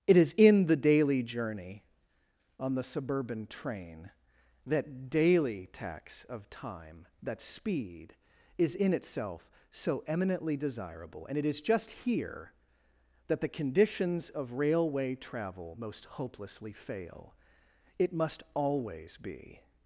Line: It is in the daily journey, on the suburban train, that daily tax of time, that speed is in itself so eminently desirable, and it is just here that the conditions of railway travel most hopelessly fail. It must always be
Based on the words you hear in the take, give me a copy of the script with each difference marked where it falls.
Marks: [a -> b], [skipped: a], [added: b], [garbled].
It is in the daily journey, on the suburban train, that daily tax of time, that speed is in itself so eminently desirable, and it is just here that the conditions of railway travel most hopelessly fail. It must always be